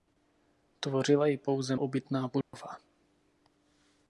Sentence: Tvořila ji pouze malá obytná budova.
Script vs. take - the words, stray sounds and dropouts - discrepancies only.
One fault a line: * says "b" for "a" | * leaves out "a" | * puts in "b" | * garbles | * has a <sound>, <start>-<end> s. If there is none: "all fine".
* leaves out "malá"
* has a dropout, 2.4-2.5 s